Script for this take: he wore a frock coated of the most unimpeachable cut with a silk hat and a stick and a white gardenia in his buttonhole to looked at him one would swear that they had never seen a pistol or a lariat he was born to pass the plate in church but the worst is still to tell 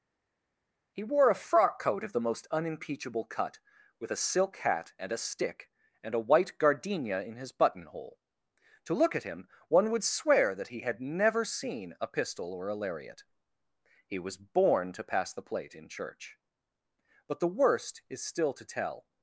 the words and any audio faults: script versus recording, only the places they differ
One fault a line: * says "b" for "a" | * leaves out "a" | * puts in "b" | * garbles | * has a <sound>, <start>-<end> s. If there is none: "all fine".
* says "coat" for "coated"
* says "look" for "looked"
* says "he" for "they"